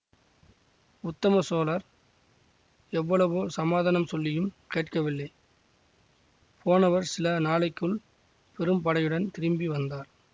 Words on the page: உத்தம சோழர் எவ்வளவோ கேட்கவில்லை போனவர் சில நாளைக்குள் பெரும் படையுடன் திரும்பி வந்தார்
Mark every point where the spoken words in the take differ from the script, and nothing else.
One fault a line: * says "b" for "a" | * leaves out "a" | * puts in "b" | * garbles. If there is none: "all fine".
* puts in "சமாதானம் சொல்லியும்"